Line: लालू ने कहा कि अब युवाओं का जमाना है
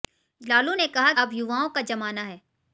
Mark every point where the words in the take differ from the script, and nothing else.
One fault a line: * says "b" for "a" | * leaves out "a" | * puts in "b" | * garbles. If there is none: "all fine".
* leaves out "कि"